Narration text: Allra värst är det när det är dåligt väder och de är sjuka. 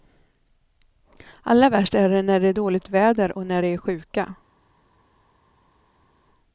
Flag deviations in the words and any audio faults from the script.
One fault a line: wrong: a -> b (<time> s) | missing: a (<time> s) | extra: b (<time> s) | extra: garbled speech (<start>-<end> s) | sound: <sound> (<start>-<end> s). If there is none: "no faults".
extra: när (3.5 s)